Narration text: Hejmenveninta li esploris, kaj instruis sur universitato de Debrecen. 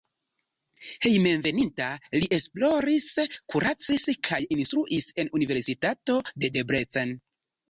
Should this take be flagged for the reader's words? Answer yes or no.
yes